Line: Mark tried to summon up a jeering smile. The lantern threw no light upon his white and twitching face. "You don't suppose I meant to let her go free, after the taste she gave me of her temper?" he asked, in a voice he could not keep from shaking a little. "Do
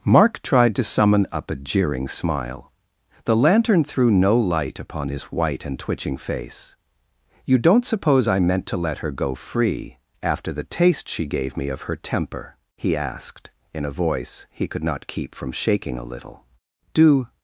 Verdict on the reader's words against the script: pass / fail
pass